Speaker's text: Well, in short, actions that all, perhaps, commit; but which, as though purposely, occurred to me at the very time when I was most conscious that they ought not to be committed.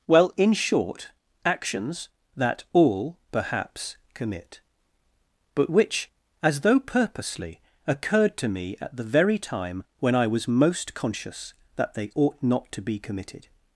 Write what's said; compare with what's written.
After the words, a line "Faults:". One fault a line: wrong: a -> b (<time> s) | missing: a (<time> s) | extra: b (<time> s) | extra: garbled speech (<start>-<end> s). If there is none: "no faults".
Well, in short, actions that all, perhaps, commit; but which, as though purposely, occurred to me at the very time when I was most conscious that they ought not to be committed.
Faults:
no faults